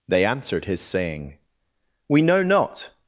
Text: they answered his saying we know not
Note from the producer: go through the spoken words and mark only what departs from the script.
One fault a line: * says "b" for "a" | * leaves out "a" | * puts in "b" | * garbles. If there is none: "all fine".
all fine